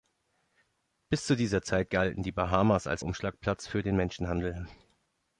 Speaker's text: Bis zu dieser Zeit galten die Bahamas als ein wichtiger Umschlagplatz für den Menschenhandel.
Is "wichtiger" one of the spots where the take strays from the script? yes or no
yes